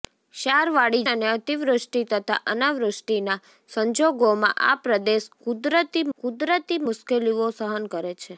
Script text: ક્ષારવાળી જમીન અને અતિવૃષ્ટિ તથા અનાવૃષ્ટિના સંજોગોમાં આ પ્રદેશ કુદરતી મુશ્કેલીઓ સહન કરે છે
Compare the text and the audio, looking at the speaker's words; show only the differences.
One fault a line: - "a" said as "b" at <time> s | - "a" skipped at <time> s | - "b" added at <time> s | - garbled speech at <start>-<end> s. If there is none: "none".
- "જમીન" skipped at 1.0 s
- "કુદરતી" added at 6.2 s